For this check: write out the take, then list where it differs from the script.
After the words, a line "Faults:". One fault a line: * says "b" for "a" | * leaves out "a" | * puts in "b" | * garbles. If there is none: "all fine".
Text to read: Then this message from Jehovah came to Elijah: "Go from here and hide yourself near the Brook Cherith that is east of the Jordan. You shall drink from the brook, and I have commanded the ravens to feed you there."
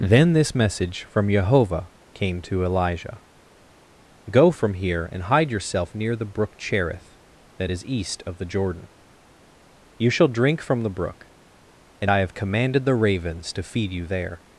Then this message from Jehovah came to Elijah: "Go from here and hide yourself near the Brook Cherith that is east of the Jordan. You shall drink from the brook, and I have commanded the ravens to feed you there."
Faults:
all fine